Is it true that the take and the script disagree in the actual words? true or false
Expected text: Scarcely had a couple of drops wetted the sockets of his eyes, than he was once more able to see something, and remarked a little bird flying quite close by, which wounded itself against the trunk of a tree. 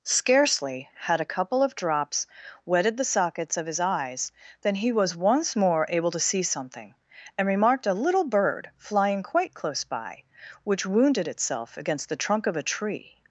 false